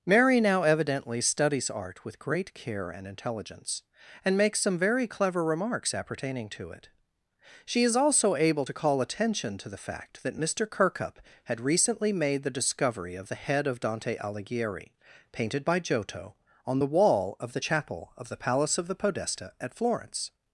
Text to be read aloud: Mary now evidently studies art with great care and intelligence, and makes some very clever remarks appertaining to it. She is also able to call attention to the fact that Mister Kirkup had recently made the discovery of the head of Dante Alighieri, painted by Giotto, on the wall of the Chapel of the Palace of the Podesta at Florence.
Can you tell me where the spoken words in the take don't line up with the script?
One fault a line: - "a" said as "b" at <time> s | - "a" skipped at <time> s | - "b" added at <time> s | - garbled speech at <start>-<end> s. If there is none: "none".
none